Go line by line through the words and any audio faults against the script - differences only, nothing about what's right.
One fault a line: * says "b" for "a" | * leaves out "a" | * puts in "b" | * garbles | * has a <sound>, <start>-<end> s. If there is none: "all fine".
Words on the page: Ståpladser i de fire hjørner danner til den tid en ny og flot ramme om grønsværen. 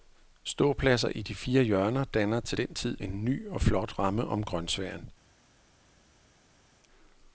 all fine